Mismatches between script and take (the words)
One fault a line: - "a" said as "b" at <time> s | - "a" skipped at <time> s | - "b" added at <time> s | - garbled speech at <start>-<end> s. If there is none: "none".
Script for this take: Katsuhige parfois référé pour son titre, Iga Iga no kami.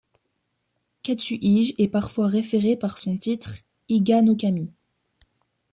- "est" added at 1.8 s
- "pour" said as "par" at 2.8 s
- "Iga" skipped at 4.2 s